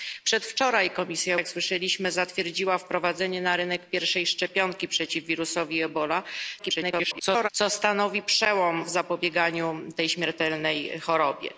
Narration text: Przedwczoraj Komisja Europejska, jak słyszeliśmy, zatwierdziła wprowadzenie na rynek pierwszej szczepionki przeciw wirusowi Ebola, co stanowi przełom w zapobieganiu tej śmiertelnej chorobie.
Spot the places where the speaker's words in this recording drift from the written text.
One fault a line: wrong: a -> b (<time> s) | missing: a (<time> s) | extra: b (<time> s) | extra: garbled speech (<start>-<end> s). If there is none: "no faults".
missing: Europejska (1.4 s)
extra: garbled speech (6.6-7.5 s)